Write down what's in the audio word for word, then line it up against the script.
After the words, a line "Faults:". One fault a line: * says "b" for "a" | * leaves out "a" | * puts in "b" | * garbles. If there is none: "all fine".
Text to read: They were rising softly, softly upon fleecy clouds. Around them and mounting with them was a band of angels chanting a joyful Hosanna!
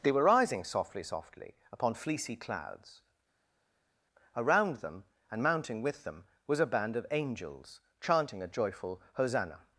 They were rising softly, softly upon fleecy clouds. Around them and mounting with them was a band of angels chanting a joyful Hosanna!
Faults:
all fine